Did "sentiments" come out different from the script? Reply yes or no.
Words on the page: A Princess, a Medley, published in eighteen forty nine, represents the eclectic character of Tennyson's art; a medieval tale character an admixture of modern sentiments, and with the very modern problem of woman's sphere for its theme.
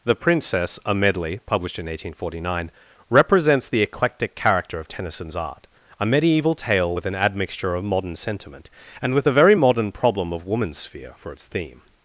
yes